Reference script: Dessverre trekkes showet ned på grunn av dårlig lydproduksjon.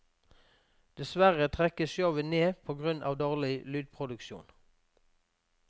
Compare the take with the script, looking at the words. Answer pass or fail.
pass